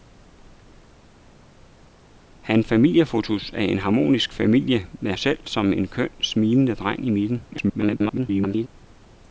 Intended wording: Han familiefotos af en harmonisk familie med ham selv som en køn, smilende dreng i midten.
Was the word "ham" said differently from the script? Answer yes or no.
yes